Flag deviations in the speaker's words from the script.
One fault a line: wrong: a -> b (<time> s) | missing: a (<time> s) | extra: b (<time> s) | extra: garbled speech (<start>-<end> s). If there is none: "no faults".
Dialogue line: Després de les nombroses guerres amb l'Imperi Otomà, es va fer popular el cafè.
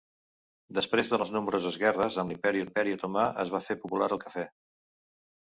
extra: l'Imperi (2.7 s)